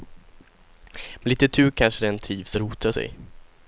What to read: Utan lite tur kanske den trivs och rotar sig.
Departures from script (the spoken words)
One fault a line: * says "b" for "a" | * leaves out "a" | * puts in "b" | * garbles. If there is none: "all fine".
* says "Med" for "Utan"